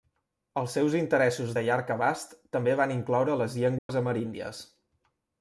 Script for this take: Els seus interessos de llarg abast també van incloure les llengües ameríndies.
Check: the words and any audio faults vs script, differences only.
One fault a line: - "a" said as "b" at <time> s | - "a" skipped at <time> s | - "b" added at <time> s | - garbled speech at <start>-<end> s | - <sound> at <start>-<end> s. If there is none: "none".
- dropout at 3.8-3.9 s